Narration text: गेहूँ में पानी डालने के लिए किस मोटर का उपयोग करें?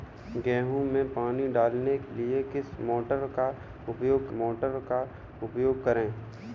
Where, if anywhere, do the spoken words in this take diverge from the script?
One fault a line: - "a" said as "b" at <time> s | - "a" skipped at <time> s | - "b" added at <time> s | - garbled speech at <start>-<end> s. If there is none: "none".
- "के" skipped at 2.0 s
- "मोटर का उपयोग" added at 4.3 s